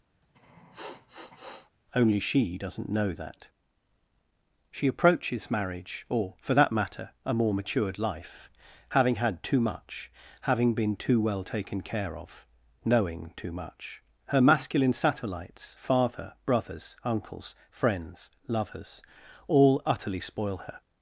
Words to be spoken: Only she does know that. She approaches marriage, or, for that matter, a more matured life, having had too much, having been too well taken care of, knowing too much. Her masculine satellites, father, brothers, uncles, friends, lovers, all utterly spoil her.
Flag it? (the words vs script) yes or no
yes